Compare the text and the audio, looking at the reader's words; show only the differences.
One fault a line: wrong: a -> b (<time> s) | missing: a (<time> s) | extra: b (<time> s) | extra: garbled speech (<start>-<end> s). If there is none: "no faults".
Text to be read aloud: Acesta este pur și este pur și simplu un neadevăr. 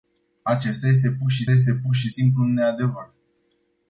no faults